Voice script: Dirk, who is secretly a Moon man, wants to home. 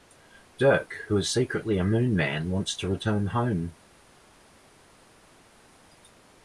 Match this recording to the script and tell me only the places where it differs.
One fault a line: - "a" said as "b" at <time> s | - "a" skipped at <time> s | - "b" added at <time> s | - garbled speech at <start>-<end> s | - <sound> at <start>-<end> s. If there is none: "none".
- "return" added at 2.9 s